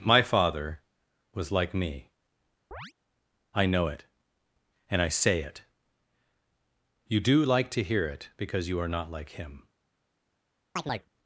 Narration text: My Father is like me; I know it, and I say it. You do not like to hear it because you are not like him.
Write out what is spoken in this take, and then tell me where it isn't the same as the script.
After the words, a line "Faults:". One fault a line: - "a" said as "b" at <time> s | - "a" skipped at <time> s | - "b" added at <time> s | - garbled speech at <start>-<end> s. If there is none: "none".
My Father was like me; I know it, and I say it. You do like to hear it because you are not like him.
Faults:
- "is" said as "was" at 1.3 s
- "not" skipped at 7.4 s